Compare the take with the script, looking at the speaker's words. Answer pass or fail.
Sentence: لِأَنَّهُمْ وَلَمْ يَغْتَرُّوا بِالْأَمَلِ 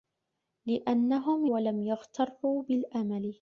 pass